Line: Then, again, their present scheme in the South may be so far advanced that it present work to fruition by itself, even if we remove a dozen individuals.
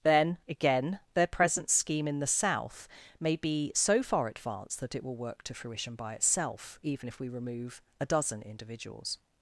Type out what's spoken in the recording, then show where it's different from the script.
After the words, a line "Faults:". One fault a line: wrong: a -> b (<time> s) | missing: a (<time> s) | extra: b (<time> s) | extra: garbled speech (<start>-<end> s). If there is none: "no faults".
Then, again, their present scheme in the South may be so far advanced that it will work to fruition by itself, even if we remove a dozen individuals.
Faults:
wrong: present -> will (5.0 s)